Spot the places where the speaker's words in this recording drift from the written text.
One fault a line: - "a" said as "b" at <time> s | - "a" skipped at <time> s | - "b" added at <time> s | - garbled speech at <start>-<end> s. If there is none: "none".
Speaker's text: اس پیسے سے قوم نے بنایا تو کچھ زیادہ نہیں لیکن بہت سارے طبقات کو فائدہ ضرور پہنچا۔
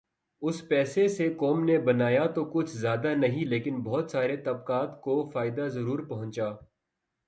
none